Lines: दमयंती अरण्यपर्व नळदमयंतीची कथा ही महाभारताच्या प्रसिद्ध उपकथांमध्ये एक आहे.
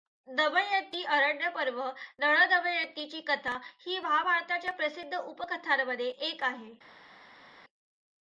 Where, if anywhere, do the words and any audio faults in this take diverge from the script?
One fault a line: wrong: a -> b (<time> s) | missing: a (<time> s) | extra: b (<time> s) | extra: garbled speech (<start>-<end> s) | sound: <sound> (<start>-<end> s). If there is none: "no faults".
no faults